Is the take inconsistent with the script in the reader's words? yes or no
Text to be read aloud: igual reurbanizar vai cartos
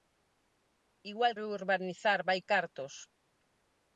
no